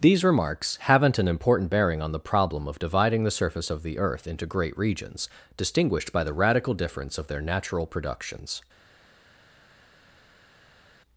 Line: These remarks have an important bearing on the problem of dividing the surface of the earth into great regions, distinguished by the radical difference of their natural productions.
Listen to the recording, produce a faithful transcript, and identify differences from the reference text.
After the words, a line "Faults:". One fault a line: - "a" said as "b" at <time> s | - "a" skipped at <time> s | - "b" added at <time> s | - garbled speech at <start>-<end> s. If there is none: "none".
These remarks haven't an important bearing on the problem of dividing the surface of the earth into great regions, distinguished by the radical difference of their natural productions.
Faults:
- "have" said as "haven't" at 0.8 s